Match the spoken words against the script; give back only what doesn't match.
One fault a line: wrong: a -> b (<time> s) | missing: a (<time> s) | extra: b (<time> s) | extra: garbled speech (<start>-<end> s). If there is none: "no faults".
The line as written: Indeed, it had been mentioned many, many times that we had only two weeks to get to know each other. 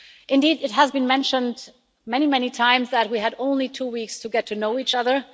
wrong: had -> has (0.7 s)